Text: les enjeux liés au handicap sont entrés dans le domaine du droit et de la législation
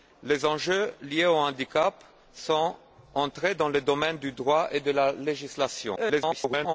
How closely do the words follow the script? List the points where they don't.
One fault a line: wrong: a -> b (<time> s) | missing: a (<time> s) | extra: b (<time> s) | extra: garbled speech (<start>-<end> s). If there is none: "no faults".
extra: garbled speech (6.0-6.7 s)